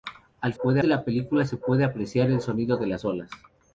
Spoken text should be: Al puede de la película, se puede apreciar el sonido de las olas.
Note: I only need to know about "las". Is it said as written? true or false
true